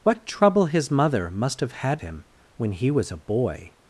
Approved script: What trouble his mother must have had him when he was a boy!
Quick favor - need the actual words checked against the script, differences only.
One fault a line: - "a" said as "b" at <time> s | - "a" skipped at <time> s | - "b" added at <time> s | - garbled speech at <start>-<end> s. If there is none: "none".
none